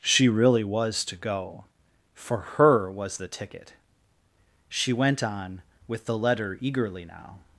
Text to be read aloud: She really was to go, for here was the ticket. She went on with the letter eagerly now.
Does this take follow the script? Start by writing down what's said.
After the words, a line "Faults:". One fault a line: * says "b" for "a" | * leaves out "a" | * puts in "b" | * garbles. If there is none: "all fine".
She really was to go, for her was the ticket. She went on with the letter eagerly now.
Faults:
* says "her" for "here"